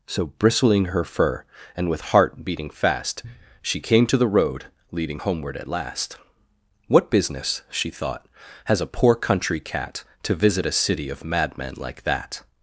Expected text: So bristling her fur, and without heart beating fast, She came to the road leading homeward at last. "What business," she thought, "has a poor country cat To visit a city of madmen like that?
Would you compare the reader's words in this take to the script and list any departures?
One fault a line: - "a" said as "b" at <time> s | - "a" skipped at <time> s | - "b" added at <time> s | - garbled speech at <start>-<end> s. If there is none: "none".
- "without" said as "with" at 1.9 s